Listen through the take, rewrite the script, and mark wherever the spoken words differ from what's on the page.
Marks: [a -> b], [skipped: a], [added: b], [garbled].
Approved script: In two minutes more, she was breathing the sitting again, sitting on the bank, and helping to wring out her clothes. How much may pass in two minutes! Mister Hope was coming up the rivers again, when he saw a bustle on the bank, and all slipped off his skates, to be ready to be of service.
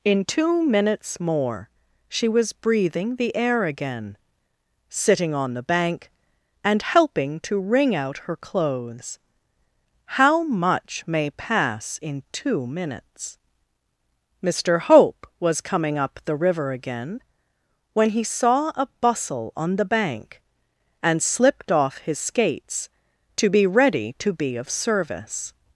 In two minutes more, she was breathing the [sitting -> air] again, sitting on the bank, and helping to wring out her clothes. How much may pass in two minutes! Mister Hope was coming up the [rivers -> river] again, when he saw a bustle on the bank, and [skipped: all] slipped off his skates, to be ready to be of service.